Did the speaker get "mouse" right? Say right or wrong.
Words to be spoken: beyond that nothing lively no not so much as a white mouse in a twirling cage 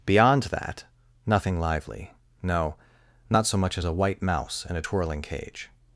right